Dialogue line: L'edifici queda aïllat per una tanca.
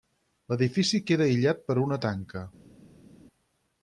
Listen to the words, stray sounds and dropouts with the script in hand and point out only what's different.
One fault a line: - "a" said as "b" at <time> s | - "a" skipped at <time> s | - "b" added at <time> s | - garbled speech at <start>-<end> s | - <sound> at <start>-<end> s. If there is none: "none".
none